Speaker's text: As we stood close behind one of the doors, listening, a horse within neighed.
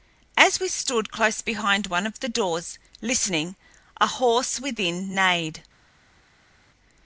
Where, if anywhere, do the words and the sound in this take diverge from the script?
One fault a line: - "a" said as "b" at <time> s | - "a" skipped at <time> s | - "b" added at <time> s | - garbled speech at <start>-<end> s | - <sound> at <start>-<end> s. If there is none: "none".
none